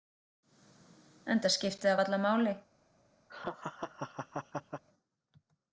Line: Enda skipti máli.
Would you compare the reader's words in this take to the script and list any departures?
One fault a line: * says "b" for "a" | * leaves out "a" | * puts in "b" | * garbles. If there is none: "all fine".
* puts in "það varla"